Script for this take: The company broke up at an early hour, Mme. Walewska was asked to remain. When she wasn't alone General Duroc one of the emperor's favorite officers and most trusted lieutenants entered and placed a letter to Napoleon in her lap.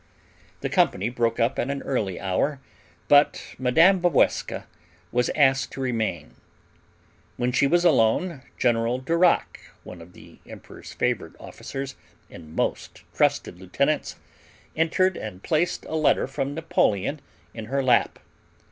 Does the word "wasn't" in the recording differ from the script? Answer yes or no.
yes